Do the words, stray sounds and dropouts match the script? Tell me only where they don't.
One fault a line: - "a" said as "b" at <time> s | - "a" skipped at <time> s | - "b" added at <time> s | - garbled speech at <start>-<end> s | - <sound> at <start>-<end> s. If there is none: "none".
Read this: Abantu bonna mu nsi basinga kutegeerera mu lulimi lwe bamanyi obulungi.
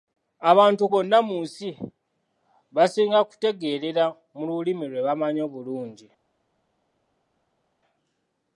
none